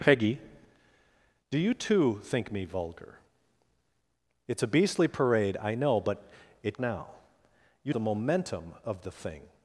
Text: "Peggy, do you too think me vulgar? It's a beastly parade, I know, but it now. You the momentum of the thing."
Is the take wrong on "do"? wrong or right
right